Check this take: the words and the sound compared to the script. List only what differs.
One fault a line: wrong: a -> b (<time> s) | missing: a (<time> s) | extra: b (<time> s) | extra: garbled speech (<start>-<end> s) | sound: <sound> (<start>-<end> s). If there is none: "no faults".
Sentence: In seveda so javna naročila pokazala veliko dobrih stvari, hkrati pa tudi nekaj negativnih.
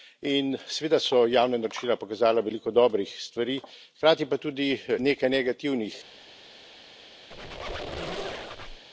sound: squeak (7.3-8.8 s)